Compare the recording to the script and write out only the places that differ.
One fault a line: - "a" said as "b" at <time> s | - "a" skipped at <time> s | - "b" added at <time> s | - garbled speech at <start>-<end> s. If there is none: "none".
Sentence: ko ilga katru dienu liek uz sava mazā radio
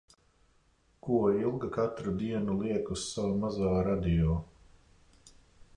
none